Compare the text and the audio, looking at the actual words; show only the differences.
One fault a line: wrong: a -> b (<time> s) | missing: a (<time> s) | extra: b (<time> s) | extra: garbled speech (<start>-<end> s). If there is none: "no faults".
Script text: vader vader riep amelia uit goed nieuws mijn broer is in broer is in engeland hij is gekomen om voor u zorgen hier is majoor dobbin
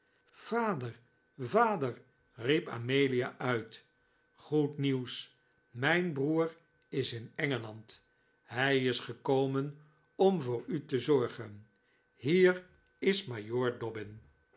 missing: broer is in (7.3 s)
extra: te (10.8 s)